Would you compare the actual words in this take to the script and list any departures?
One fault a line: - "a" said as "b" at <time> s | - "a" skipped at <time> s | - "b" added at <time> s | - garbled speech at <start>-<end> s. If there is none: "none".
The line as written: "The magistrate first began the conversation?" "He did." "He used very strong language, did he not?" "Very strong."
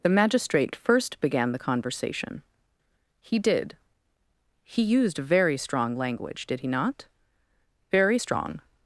none